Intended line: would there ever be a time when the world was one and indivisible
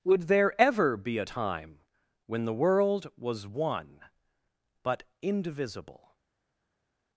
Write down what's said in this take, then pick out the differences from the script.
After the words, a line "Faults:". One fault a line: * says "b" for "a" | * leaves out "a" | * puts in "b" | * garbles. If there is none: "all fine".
would there ever be a time when the world was one but indivisible
Faults:
* says "but" for "and"